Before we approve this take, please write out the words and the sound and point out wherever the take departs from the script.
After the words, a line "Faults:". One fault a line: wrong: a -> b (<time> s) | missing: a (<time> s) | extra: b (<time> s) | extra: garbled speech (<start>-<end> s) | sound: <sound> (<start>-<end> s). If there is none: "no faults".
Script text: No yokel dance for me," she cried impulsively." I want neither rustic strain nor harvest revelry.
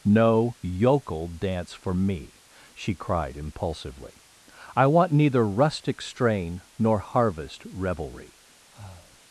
No yokel dance for me," she cried impulsively." I want neither rustic strain nor harvest revelry.
Faults:
sound: breath (8.7-9.2 s)